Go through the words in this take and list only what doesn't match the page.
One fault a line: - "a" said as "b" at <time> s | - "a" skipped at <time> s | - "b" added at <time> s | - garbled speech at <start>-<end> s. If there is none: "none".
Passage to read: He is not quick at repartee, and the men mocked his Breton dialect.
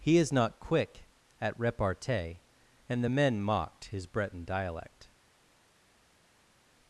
none